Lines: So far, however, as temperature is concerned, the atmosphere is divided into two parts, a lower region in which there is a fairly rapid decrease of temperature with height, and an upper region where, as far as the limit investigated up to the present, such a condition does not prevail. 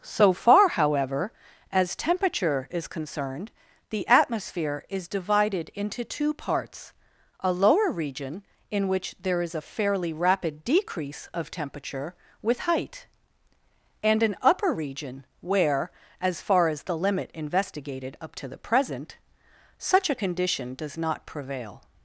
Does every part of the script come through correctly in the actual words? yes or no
yes